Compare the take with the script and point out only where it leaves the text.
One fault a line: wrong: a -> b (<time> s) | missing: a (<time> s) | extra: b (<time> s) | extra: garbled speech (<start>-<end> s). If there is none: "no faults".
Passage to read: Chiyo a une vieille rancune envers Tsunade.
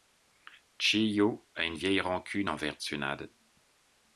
no faults